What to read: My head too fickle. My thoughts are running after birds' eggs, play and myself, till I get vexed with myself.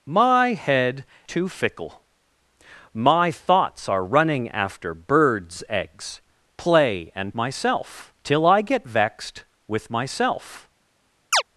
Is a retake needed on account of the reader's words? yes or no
no